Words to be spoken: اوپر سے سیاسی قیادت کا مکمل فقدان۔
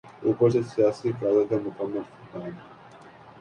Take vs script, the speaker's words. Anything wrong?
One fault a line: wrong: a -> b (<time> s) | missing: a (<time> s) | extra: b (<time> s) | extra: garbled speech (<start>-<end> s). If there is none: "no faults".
no faults